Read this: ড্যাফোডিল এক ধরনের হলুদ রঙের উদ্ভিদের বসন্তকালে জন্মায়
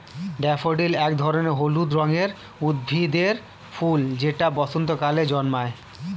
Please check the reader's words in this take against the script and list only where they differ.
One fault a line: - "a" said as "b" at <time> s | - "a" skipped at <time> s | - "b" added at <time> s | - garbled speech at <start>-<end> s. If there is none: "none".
- "ফুল যেটা" added at 3.7 s